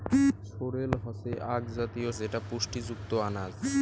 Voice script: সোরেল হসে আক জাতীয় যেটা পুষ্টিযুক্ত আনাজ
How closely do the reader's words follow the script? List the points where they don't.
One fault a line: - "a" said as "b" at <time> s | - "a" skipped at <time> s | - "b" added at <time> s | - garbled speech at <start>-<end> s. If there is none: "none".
none